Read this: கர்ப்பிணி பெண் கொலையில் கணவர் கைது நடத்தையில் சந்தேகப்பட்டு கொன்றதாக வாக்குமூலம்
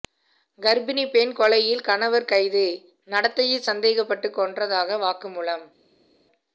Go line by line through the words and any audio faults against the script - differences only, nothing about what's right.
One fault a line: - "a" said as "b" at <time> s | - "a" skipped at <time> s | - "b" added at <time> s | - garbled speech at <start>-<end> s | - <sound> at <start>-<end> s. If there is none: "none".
none